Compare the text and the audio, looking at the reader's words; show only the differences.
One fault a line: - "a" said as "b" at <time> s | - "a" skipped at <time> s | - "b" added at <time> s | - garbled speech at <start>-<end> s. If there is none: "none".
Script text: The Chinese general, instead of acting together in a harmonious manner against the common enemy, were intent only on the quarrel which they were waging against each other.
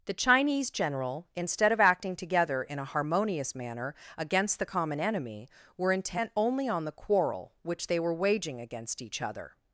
none